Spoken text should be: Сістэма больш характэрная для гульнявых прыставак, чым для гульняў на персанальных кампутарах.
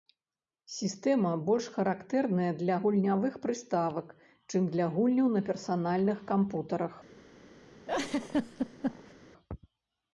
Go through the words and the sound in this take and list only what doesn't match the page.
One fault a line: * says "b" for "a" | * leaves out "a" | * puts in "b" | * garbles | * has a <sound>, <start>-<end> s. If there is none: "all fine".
* has a laugh, 7.9-9.1 s